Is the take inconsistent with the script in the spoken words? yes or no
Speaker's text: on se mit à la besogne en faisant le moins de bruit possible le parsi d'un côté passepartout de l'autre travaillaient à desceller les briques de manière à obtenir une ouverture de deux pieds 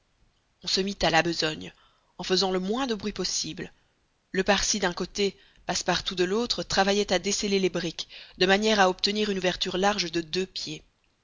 yes